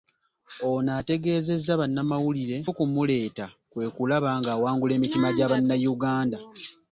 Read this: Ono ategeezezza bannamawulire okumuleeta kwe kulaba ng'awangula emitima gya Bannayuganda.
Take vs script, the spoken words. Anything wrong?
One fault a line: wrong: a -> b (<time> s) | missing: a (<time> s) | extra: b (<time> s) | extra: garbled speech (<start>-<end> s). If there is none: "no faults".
no faults